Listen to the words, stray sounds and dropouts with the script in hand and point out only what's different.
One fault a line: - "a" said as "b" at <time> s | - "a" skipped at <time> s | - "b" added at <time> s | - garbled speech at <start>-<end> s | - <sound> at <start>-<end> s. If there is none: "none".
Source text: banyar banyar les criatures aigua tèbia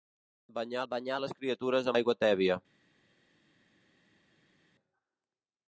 none